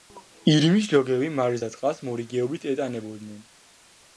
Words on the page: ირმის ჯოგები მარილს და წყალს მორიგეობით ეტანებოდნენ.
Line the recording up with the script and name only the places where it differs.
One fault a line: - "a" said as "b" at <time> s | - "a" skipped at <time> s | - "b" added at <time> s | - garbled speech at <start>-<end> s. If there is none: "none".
none